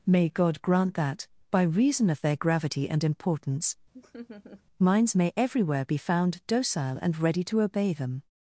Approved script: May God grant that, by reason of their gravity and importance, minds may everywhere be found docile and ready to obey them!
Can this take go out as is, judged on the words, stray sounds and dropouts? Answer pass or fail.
fail